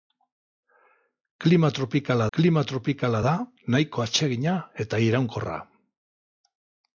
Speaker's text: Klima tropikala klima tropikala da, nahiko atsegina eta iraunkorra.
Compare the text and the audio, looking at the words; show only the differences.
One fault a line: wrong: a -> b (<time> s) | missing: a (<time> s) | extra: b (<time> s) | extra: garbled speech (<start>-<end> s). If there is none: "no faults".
no faults